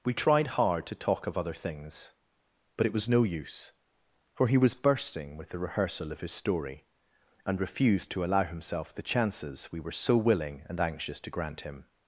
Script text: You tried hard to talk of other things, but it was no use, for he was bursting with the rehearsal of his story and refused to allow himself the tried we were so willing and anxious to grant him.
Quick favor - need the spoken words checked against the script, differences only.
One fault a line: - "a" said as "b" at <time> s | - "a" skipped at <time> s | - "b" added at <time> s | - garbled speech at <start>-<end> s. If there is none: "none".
- "You" said as "We" at 0.0 s
- "tried" said as "chances" at 9.0 s